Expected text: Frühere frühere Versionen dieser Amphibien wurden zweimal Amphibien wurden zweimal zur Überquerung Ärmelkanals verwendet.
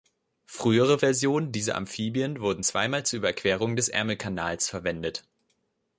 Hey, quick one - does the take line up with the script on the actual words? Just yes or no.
no